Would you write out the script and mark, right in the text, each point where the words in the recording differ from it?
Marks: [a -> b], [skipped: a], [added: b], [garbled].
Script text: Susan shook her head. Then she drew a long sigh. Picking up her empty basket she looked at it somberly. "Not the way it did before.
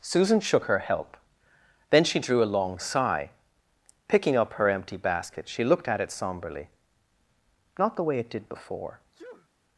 Susan shook her [head. -> help] Then she drew a long sigh. Picking up her empty basket she looked at it somberly. "Not the way it did before.